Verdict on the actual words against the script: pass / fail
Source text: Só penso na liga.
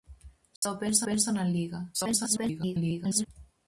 fail